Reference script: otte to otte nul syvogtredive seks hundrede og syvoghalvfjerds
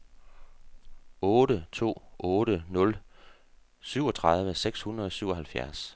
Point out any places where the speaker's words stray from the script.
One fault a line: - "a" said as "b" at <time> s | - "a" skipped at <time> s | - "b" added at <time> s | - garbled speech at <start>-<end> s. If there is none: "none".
none